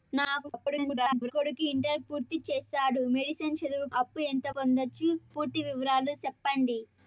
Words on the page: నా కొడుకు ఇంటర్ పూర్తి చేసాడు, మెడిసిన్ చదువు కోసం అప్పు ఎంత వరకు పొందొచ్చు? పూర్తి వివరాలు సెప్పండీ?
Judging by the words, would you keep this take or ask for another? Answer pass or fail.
fail